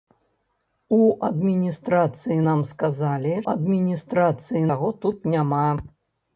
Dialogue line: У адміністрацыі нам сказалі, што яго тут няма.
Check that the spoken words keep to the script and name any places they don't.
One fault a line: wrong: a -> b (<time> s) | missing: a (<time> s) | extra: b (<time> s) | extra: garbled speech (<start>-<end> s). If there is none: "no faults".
wrong: што -> адміністрацыі (3.5 s)